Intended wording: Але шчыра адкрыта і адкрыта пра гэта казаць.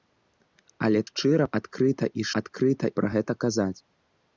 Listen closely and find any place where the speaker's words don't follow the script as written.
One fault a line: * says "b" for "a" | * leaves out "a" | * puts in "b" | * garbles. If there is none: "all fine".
all fine